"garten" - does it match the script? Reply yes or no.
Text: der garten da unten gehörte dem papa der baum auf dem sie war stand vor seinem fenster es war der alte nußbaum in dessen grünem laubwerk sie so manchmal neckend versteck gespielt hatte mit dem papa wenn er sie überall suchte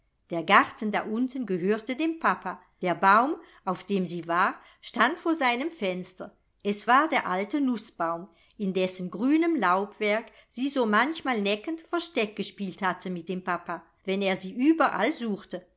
yes